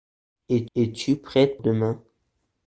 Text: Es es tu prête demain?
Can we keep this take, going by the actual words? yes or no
yes